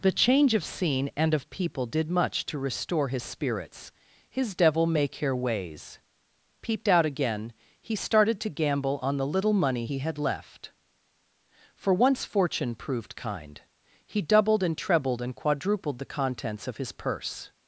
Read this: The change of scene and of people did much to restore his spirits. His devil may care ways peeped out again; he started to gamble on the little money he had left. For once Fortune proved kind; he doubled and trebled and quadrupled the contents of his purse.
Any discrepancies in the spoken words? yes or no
no